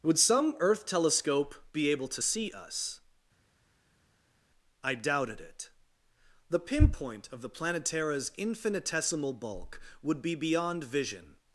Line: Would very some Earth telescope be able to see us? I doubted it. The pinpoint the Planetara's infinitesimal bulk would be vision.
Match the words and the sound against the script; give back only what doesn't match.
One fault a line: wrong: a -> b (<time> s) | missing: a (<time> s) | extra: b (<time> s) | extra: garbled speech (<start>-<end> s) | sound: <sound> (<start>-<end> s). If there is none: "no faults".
missing: very (0.2 s)
extra: of (7.3 s)
extra: beyond (10.3 s)